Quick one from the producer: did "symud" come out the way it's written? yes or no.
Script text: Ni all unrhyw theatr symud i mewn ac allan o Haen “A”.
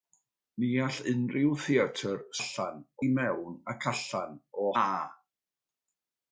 no